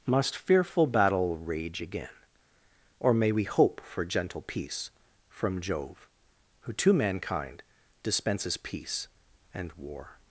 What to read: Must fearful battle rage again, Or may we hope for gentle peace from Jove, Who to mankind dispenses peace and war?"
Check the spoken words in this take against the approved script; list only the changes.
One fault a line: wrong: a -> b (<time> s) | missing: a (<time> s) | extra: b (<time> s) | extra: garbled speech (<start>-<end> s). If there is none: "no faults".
no faults